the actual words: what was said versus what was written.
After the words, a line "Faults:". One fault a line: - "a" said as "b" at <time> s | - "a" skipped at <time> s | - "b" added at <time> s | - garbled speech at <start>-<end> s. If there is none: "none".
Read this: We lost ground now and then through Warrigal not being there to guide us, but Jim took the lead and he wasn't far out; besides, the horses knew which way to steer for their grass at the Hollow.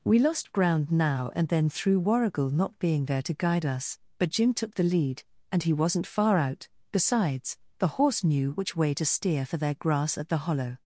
We lost ground now and then through Warrigal not being there to guide us, but Jim took the lead and he wasn't far out; besides, the horse knew which way to steer for their grass at the Hollow.
Faults:
- "horses" said as "horse" at 7.9 s